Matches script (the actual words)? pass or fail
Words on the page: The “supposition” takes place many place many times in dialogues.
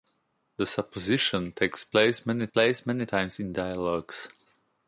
pass